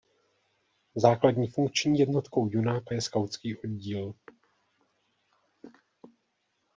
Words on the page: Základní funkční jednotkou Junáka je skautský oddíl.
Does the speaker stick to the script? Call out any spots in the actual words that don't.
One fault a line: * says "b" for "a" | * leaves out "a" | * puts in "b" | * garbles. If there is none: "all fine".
all fine